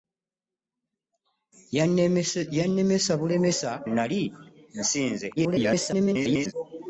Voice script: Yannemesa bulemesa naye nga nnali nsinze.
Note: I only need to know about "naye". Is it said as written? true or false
false